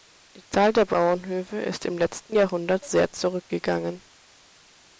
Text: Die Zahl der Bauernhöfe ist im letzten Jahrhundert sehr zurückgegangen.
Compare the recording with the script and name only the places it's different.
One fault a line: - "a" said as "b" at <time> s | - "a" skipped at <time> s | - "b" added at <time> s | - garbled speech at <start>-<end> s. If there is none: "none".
none